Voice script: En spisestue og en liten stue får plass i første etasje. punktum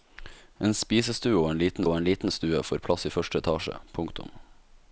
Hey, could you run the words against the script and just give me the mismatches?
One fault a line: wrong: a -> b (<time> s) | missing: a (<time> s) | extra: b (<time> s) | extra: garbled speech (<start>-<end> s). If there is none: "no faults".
extra: og en liten (1.8 s)